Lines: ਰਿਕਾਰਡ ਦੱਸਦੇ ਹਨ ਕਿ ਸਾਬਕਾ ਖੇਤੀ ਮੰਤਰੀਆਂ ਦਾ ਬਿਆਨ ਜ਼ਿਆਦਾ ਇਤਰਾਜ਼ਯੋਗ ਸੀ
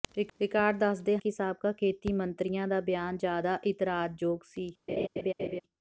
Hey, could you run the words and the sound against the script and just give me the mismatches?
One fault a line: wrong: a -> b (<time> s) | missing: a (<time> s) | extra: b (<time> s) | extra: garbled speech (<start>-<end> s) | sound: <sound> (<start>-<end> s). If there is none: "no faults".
missing: ਹਨ (1.2 s)
sound: laugh (4.9-5.6 s)